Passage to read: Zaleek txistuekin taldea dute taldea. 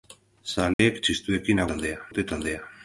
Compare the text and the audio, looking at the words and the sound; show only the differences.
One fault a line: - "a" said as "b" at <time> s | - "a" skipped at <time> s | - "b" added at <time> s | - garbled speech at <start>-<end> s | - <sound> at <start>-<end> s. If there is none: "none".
- dropout at 0.7-0.8 s